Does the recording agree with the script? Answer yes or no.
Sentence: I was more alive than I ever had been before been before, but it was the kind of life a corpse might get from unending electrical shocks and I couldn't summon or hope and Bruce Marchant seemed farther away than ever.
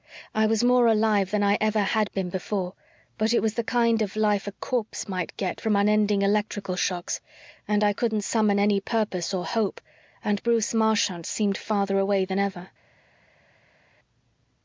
no